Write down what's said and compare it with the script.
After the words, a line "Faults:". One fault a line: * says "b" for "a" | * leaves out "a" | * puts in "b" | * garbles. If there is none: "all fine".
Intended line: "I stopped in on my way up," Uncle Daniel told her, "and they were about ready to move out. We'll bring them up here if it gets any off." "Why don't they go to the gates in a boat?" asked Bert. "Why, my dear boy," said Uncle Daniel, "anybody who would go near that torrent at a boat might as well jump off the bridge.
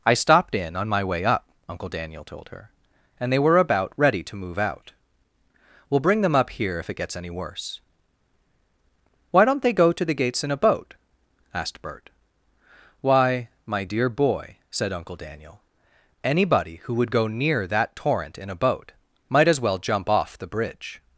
"I stopped in on my way up," Uncle Daniel told her, "and they were about ready to move out. We'll bring them up here if it gets any worse." "Why don't they go to the gates in a boat?" asked Bert. "Why, my dear boy," said Uncle Daniel, "anybody who would go near that torrent in a boat might as well jump off the bridge.
Faults:
* says "worse" for "off"
* says "in" for "at"